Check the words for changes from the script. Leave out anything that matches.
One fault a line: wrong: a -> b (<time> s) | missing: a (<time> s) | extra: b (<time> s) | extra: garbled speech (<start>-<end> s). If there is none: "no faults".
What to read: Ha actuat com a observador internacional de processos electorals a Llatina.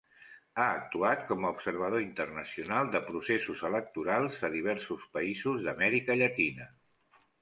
extra: diversos països d'Amèrica (4.6 s)